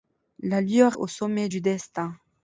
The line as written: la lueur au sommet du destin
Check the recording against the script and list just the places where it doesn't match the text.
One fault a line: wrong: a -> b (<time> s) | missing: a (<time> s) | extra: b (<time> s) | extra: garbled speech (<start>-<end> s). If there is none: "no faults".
no faults